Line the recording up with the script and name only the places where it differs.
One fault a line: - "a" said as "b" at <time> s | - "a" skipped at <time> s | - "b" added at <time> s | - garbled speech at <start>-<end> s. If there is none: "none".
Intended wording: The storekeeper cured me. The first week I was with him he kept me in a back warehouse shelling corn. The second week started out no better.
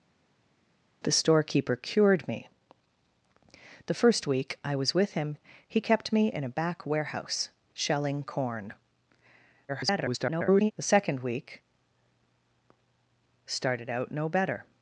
- garbled speech at 9.7-10.7 s